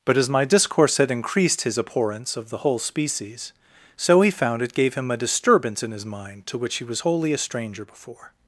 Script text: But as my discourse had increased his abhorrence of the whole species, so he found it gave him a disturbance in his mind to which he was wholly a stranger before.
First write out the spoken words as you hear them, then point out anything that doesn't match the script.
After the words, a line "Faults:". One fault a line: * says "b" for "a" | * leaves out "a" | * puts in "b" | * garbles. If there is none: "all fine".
But as my discourse had increased his abhorrence of the whole species, so he found it gave him a disturbance in his mind to which he was wholly a stranger before.
Faults:
all fine